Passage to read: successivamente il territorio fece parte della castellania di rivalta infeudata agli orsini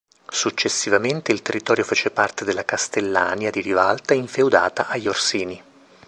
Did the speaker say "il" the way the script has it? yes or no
yes